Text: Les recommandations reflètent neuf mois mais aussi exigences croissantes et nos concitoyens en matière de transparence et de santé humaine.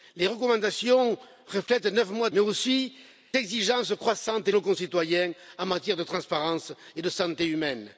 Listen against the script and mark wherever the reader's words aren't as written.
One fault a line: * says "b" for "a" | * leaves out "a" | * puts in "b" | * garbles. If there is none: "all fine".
all fine